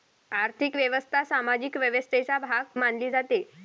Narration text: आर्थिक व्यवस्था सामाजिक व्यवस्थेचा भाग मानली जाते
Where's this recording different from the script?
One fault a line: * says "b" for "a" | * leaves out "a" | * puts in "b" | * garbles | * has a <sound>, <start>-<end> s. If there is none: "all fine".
all fine